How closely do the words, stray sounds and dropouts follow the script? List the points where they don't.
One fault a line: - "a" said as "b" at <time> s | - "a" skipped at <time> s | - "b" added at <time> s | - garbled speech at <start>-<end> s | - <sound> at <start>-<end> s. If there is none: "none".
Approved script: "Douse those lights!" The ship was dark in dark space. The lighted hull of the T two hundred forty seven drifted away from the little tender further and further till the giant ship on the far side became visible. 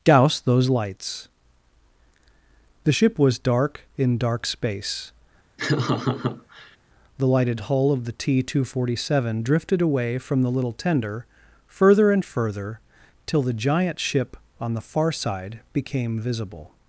- laugh at 5.6-6.8 s